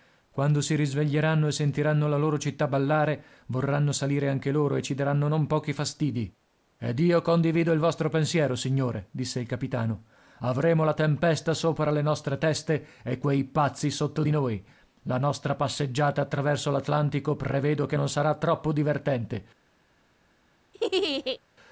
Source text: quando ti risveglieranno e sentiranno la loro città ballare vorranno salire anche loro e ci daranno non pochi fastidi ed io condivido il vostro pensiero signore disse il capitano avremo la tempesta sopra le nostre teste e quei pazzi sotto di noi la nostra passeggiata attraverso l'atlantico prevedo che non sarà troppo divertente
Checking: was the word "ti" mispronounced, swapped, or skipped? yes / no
yes